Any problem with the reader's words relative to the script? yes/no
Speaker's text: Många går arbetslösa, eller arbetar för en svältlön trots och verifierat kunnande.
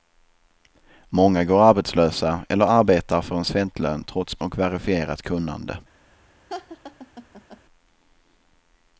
no